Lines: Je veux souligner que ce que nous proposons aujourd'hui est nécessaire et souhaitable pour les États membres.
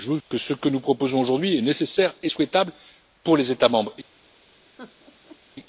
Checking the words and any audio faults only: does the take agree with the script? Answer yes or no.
no